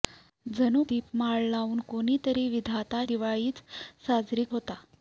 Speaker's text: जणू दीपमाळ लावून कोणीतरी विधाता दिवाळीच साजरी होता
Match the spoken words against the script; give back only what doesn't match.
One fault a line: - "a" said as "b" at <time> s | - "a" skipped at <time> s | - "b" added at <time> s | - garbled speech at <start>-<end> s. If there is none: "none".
none